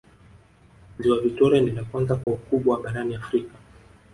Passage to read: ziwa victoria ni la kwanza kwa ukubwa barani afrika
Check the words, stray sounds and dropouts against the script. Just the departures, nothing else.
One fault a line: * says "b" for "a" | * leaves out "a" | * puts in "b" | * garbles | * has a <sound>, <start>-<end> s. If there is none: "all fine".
* has a dropout, 2.2-2.3 s